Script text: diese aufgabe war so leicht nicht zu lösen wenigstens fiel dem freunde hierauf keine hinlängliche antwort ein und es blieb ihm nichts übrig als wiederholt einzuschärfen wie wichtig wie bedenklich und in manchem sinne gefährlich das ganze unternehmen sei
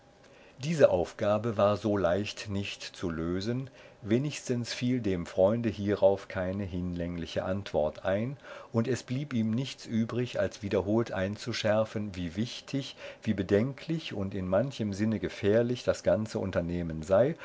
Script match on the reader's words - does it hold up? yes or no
yes